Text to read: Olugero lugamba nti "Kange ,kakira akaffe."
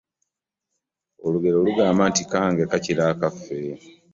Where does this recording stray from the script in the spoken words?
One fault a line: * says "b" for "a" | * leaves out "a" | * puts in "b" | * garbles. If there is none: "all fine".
all fine